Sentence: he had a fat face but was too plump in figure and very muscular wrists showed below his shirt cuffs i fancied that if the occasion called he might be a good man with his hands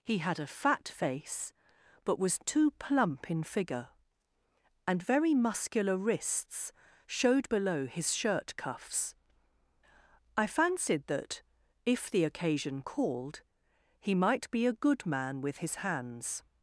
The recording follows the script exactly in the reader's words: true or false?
true